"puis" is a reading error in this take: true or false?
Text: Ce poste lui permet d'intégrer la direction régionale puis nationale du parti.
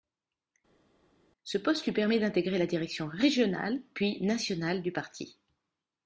false